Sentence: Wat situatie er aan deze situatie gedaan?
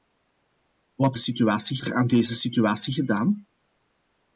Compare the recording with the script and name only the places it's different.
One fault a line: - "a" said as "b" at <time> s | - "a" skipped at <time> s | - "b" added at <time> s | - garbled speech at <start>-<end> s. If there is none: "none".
none